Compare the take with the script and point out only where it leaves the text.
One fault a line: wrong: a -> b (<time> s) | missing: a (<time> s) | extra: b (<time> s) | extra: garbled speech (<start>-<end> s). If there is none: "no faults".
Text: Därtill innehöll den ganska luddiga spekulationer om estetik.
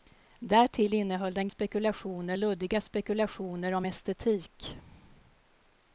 wrong: ganska -> spekulationer (1.5 s)